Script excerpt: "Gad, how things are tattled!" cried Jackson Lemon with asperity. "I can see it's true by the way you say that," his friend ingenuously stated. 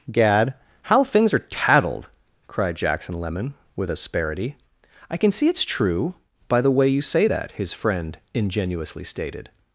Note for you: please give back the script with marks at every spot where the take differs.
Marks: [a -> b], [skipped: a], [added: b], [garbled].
"Gad, how things are tattled!" cried Jackson Lemon with asperity. "I can see it's true by the way you say that," his friend ingenuously stated.